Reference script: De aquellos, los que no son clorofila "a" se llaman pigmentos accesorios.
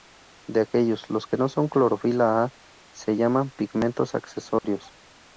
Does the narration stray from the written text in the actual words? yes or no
no